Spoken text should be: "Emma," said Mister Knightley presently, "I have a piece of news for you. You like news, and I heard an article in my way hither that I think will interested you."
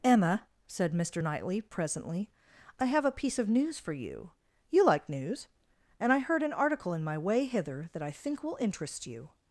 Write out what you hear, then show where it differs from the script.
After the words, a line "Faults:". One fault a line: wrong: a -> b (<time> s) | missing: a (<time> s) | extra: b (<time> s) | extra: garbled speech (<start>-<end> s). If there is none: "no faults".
"Emma," said Mister Knightley presently, "I have a piece of news for you. You like news, and I heard an article in my way hither that I think will interest you."
Faults:
wrong: interested -> interest (8.6 s)